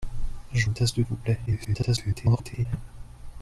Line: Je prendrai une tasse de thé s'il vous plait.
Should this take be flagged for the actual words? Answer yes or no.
yes